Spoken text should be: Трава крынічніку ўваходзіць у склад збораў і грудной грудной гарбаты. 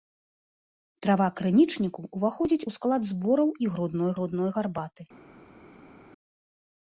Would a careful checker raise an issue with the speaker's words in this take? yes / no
no